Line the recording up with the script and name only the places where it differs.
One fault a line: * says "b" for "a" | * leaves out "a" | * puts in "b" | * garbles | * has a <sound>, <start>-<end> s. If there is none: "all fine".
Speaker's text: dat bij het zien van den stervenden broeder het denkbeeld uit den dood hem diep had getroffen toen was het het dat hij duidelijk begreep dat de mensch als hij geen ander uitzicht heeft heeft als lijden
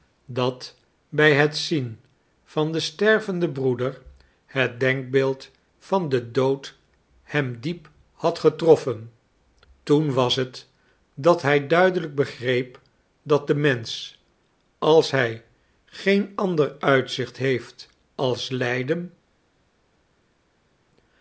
* says "van" for "uit"
* leaves out "het"
* leaves out "heeft"